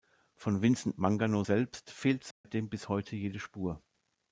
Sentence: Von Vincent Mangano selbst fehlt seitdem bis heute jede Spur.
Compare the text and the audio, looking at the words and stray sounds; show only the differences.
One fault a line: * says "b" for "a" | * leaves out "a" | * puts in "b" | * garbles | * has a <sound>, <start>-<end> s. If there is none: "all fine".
* has a dropout, 2.3-2.4 s